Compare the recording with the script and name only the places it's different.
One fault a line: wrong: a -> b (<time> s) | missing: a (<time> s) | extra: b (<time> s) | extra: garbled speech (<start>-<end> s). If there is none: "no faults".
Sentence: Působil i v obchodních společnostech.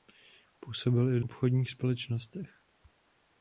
no faults